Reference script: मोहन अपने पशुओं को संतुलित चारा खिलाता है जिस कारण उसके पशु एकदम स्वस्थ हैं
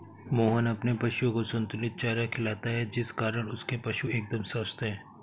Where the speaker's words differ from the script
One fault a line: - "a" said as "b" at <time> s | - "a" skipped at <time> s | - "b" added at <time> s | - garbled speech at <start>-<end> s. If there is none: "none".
none